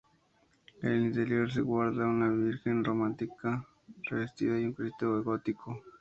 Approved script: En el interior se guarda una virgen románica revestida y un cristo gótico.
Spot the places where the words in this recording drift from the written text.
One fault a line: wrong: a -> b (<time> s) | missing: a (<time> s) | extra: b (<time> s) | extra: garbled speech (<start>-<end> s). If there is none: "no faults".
no faults